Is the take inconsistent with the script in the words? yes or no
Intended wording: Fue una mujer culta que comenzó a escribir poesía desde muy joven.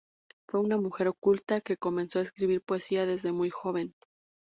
no